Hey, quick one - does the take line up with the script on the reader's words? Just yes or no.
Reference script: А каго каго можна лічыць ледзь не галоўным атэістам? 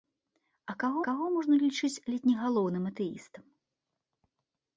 yes